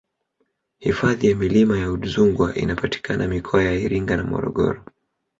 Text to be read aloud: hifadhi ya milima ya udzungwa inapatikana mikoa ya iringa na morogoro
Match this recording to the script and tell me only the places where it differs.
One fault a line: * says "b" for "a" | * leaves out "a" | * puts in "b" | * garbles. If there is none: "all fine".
all fine